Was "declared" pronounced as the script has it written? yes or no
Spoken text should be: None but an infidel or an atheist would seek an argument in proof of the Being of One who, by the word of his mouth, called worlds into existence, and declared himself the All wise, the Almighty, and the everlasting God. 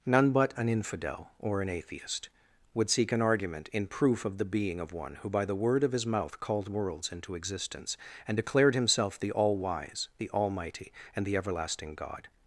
yes